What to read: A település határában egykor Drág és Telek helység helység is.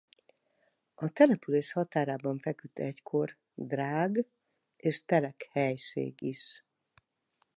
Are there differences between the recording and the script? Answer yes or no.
yes